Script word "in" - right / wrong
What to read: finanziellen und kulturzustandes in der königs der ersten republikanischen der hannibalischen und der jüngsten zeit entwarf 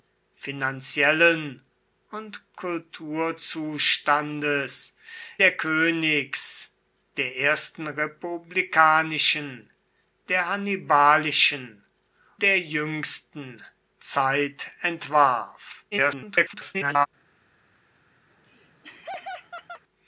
wrong